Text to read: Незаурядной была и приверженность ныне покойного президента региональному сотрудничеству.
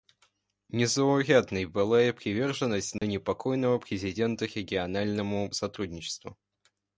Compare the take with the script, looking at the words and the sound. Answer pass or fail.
fail